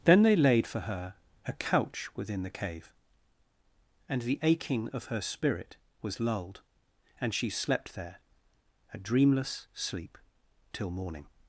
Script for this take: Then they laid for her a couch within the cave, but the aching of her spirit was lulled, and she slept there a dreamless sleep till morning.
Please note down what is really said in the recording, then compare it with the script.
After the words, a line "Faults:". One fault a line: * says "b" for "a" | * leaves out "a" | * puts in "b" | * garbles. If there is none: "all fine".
Then they laid for her a couch within the cave, and the aching of her spirit was lulled, and she slept there a dreamless sleep till morning.
Faults:
* says "and" for "but"